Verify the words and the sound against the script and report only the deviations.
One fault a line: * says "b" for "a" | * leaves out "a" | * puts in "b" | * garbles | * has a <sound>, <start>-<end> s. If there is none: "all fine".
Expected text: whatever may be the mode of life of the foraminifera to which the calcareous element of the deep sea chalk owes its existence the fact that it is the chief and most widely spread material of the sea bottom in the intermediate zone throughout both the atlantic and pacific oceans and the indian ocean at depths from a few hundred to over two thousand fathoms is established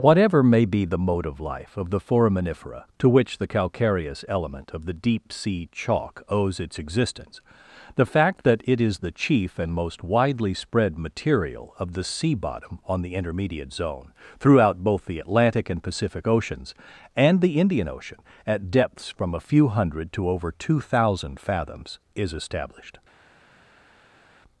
* says "on" for "in"